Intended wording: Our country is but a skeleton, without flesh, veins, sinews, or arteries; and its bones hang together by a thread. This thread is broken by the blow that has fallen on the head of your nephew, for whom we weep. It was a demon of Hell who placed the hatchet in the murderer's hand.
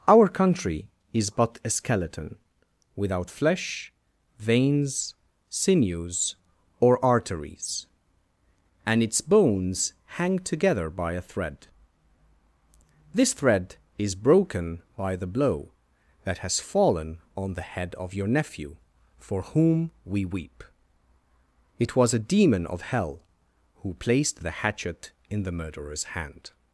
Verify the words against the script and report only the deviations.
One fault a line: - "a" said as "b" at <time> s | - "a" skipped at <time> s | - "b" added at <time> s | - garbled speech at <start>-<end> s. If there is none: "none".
none